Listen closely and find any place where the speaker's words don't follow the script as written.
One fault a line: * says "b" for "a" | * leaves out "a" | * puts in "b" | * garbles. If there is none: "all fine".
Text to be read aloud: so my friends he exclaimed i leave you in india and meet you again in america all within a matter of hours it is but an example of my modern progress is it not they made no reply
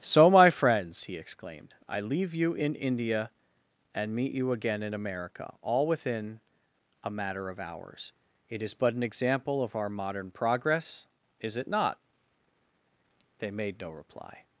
* says "our" for "my"